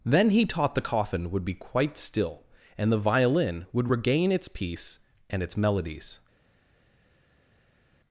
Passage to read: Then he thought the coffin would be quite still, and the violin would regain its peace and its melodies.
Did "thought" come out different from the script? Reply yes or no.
yes